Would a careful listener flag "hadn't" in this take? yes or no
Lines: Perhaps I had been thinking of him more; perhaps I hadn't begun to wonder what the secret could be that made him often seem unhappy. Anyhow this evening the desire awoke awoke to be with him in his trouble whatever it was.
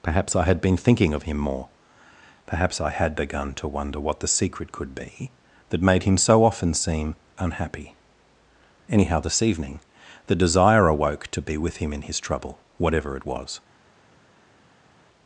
yes